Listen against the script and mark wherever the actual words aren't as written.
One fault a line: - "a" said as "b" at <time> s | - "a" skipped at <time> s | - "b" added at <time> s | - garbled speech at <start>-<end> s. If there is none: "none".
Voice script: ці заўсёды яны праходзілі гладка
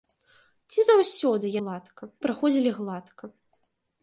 - "яны" said as "гладка" at 1.6 s